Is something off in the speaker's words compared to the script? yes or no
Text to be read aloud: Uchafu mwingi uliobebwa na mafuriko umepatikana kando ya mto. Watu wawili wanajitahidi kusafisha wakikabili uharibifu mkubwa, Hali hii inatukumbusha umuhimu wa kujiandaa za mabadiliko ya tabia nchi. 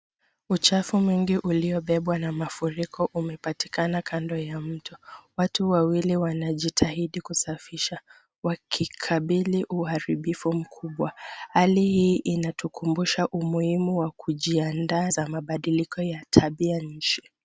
no